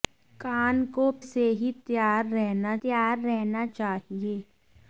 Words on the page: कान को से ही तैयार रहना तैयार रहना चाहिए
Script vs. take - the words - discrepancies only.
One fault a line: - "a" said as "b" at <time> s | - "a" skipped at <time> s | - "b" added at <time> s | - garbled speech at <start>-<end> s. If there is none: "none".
none